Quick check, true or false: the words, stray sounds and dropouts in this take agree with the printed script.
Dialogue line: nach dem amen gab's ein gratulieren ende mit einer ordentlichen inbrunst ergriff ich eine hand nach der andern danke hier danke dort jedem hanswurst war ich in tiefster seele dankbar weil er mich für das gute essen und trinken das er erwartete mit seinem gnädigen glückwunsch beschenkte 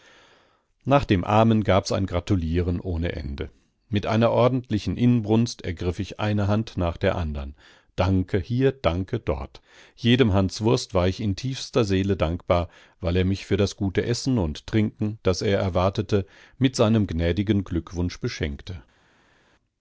false